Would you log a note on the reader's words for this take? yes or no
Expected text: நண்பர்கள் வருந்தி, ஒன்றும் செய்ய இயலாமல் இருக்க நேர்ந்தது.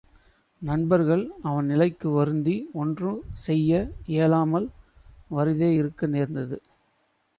yes